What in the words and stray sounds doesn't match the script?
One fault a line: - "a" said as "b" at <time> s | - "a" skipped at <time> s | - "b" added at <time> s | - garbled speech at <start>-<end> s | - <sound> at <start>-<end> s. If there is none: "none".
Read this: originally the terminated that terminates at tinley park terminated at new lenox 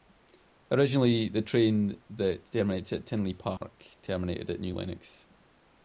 - "terminated" said as "train" at 1.4 s
- dropout at 3.6-3.6 s